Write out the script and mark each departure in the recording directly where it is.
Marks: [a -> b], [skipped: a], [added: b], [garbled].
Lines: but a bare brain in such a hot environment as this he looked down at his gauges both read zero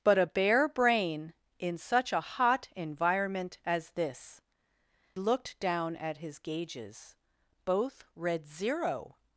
but a bare brain in such a hot environment as this [skipped: he] looked down at his gauges both read zero